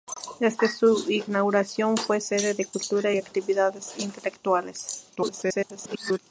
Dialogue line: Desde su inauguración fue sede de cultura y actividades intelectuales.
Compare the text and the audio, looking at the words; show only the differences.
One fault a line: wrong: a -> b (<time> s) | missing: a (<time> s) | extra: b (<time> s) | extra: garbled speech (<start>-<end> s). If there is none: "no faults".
extra: garbled speech (5.2-6.2 s)